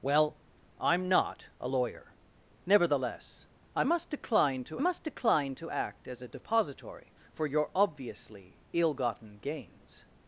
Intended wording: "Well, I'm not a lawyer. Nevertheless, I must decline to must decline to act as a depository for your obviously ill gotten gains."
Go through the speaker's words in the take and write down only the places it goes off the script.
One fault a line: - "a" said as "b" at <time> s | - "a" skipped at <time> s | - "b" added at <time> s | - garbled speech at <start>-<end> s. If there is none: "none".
none